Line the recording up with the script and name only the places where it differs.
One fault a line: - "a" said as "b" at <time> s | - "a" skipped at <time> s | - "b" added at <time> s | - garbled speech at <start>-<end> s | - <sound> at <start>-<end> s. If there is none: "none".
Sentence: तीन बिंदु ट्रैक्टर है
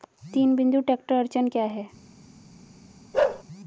- "अड़चन क्या" added at 1.1 s
- bark at 3.1-3.4 s